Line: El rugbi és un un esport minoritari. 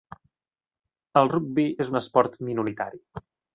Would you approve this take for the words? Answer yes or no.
no